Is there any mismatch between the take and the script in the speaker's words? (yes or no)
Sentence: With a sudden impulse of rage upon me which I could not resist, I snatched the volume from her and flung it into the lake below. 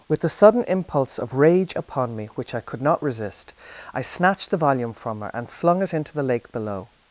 yes